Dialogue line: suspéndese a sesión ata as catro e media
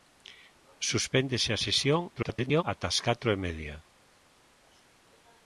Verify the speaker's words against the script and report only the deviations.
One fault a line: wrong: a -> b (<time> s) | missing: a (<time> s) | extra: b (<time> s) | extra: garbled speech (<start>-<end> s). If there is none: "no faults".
extra: garbled speech (2.2-2.6 s)